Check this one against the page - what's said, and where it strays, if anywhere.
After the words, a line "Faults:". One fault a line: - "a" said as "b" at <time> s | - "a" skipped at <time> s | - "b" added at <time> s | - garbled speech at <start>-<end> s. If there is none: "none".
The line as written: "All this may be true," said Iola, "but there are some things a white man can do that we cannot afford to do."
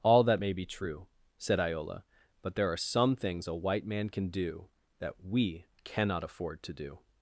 "All that may be true," said Iola, "but there are some things a white man can do that we cannot afford to do."
Faults:
- "this" said as "that" at 0.2 s